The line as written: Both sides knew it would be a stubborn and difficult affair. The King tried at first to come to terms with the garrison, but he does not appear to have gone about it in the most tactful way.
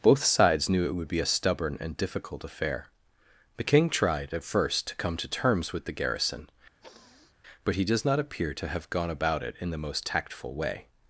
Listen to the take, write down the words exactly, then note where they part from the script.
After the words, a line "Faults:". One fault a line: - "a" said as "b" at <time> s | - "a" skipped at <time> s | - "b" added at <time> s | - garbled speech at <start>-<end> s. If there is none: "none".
Both sides knew it would be a stubborn and difficult affair. The King tried at first to come to terms with the garrison, but he does not appear to have gone about it in the most tactful way.
Faults:
none